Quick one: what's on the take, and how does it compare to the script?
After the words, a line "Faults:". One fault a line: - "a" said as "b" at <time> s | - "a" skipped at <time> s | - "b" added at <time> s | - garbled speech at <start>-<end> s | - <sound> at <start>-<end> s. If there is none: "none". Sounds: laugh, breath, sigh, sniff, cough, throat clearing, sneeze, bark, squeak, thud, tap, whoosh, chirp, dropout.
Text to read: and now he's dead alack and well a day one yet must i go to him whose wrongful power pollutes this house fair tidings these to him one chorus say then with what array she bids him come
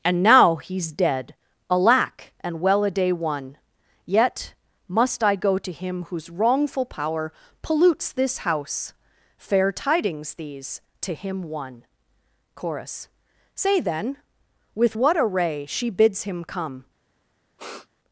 and now he's dead alack and well a day one yet must i go to him whose wrongful power pollutes this house fair tidings these to him one chorus say then with what array she bids him come
Faults:
- sniff at 17.6-17.9 s